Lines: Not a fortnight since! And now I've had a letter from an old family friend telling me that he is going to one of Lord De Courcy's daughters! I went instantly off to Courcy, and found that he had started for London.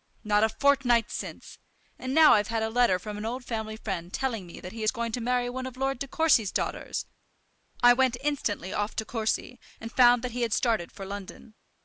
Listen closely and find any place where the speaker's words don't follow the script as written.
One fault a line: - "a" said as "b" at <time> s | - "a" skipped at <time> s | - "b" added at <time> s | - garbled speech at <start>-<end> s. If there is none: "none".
- "marry" added at 5.2 s